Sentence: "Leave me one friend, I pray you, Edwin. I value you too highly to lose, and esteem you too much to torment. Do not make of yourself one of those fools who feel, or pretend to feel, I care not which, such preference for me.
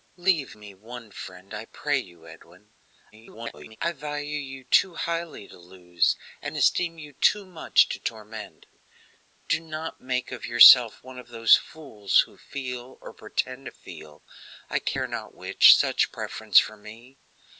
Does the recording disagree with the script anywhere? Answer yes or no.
yes